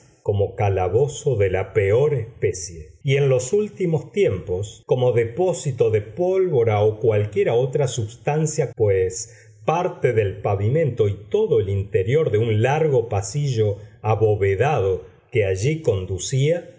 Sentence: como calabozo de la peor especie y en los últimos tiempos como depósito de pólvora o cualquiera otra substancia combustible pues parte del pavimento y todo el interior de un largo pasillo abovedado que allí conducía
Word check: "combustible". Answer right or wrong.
wrong